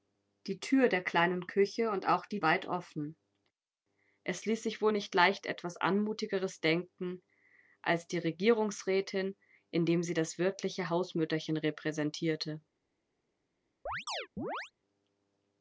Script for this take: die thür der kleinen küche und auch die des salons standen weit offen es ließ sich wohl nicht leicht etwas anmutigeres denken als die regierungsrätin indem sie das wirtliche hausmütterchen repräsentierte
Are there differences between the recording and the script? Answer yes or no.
yes